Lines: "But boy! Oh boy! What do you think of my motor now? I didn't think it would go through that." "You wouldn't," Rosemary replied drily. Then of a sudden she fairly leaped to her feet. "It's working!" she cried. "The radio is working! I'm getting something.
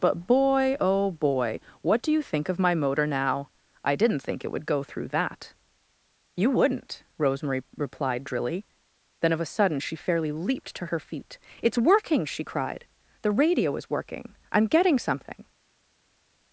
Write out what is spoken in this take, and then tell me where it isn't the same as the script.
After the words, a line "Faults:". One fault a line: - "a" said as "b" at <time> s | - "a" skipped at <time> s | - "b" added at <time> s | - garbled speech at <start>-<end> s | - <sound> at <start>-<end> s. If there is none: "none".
"But boy! Oh boy! What do you think of my motor now? I didn't think it would go through that." "You wouldn't," Rosemary replied drily. Then of a sudden she fairly leaped to her feet. "It's working!" she cried. "The radio is working! I'm getting something.
Faults:
none